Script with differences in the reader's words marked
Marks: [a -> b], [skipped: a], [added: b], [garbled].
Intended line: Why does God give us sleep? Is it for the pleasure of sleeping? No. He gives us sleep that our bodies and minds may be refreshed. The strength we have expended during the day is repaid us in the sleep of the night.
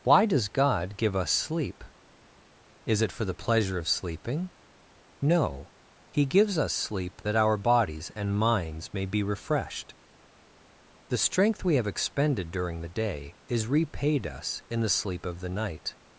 Why does God give us sleep? Is it for the pleasure of sleeping? No. He gives us sleep that our bodies and minds may be refreshed. The strength we have expended during the day is repaid us in the sleep of the night.